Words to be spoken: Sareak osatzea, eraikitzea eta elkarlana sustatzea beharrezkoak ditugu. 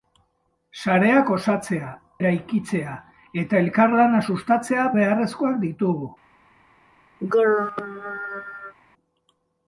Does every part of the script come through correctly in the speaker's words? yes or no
yes